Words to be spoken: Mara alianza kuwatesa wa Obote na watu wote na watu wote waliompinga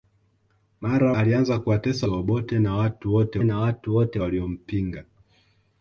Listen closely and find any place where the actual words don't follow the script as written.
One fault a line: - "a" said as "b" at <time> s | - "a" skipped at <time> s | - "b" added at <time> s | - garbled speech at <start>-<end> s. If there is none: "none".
none